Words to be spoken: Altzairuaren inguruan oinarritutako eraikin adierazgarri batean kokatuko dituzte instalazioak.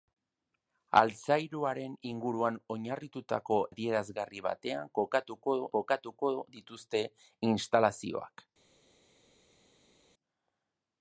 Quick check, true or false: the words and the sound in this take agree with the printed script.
false